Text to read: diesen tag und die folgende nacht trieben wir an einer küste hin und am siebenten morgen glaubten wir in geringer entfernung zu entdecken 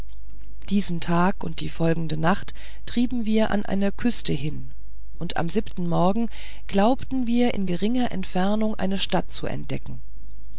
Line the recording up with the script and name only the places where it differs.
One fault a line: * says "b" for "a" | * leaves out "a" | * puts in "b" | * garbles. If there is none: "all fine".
* puts in "eine stadt"